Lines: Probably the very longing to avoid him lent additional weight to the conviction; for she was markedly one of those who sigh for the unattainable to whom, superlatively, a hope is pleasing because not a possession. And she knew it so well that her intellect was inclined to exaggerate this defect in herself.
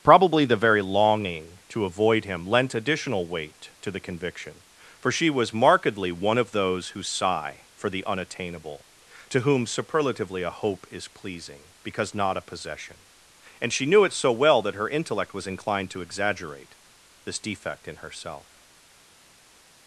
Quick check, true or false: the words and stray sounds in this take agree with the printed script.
true